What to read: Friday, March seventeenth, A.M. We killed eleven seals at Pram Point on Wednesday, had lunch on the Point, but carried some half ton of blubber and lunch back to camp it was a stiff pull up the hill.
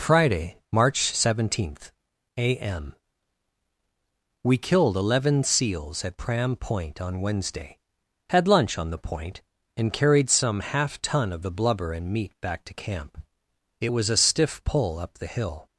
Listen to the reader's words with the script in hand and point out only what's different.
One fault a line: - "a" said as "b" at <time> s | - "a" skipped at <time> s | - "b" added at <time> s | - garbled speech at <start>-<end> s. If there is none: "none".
- "but" said as "and" at 9.8 s
- "the" added at 11.4 s
- "lunch" said as "meat" at 12.1 s